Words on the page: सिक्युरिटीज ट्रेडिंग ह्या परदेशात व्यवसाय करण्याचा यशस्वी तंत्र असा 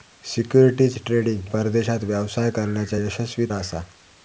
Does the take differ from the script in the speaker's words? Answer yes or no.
yes